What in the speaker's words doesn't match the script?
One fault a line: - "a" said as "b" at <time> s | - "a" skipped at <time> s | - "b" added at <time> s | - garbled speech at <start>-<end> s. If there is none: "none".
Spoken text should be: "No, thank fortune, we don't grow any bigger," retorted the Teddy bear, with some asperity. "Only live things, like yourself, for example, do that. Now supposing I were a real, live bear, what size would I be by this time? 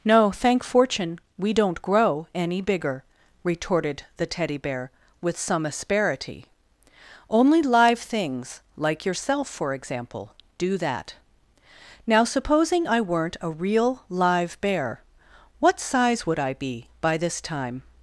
- "were" said as "weren't" at 13.0 s